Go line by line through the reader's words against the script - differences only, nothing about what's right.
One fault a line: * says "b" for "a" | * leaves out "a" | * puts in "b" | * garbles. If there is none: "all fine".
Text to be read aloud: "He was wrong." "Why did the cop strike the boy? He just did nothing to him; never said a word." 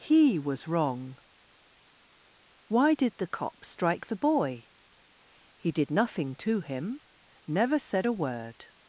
* leaves out "just"